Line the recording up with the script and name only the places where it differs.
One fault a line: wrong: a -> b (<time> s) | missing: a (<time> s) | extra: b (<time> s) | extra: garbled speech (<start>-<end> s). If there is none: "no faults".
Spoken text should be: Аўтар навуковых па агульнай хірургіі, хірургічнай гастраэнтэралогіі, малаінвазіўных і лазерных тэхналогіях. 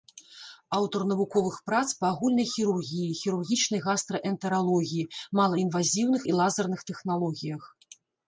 extra: прац (1.7 s)